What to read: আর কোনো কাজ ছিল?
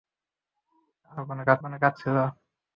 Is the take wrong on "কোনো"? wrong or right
right